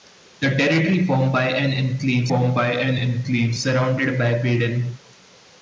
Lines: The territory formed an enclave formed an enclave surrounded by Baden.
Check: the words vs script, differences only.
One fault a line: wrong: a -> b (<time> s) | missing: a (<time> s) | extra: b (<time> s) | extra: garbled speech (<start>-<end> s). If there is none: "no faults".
no faults